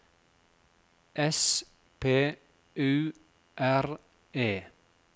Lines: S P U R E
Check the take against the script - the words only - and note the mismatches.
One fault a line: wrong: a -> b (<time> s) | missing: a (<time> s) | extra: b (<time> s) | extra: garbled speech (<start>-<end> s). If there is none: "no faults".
no faults